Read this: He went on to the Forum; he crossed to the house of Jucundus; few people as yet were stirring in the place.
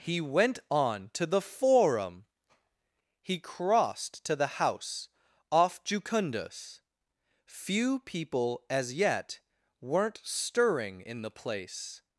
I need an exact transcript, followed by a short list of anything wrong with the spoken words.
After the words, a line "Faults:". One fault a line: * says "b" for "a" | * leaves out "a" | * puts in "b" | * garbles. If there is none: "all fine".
He went on to the Forum; he crossed to the house off Jucundus; few people as yet weren't stirring in the place.
Faults:
* says "off" for "of"
* says "weren't" for "were"